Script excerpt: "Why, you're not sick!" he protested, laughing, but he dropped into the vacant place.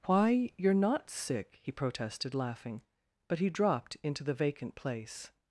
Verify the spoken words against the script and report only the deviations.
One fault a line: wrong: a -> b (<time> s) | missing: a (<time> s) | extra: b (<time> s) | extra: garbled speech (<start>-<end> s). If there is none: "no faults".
no faults